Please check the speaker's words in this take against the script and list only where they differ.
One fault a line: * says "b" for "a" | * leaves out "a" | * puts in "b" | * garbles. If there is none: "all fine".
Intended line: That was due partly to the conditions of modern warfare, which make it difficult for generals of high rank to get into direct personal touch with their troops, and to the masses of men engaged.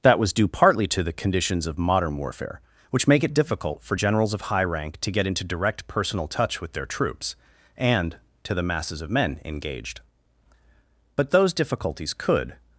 * puts in "But those difficulties could"